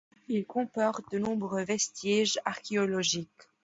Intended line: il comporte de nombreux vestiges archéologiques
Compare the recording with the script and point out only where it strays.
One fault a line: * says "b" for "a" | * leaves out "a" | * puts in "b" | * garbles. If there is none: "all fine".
all fine